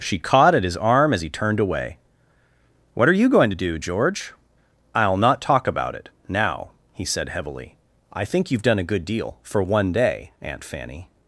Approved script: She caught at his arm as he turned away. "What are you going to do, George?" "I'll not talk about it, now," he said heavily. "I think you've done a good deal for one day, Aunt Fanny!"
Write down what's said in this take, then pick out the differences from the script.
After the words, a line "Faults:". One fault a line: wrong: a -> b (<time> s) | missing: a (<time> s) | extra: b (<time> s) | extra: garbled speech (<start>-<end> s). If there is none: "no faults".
She caught at his arm as he turned away. "What are you going to do, George?" "I'll not talk about it, now," he said heavily. "I think you've done a good deal for one day, Aunt Fanny!"
Faults:
no faults